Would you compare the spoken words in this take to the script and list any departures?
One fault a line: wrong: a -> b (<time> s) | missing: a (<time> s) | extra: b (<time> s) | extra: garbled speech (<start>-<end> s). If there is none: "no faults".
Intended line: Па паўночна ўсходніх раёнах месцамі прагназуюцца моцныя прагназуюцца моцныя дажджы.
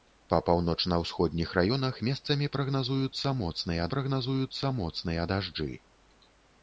no faults